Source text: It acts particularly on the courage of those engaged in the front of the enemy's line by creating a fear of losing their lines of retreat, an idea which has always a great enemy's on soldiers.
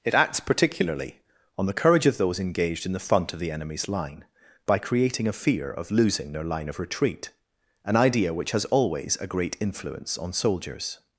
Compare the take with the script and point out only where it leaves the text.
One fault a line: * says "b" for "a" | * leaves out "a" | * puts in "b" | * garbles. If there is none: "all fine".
* says "line" for "lines"
* says "influence" for "enemy's"